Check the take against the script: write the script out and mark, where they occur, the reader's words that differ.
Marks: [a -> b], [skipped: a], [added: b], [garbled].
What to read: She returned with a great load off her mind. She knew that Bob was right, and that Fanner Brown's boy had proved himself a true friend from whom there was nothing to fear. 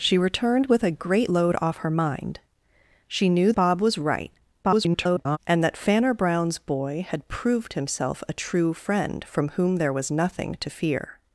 She returned with a great load off her mind. She knew [skipped: that] Bob was right, [garbled] and that Fanner Brown's boy had proved himself a true friend from whom there was nothing to fear.